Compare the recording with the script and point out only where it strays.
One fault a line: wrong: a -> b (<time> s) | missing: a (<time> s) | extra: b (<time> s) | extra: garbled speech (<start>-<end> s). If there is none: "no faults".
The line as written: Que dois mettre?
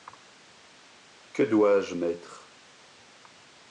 extra: je (1.8 s)